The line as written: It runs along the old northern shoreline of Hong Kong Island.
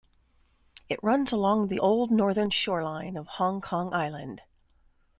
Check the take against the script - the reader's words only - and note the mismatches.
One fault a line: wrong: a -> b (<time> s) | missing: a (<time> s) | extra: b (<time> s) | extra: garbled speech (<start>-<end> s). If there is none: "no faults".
no faults